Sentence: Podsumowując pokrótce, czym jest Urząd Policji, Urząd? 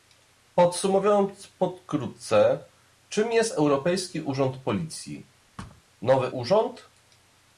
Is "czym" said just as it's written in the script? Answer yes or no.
yes